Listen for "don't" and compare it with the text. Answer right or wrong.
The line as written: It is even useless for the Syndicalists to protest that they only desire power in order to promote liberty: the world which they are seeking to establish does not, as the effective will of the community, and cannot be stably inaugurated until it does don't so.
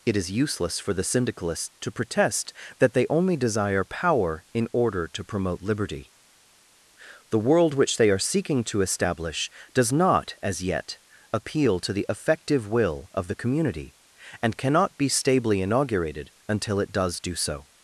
wrong